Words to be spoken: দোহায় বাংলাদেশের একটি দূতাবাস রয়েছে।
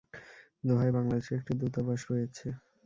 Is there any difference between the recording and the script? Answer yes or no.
no